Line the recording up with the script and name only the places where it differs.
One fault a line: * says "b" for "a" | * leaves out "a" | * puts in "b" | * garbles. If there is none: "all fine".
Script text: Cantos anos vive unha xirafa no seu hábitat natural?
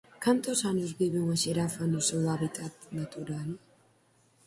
all fine